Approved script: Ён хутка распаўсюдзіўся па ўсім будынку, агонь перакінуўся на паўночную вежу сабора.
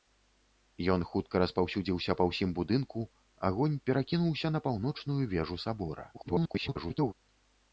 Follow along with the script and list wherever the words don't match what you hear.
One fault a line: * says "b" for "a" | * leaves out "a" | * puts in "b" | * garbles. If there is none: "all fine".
* garbles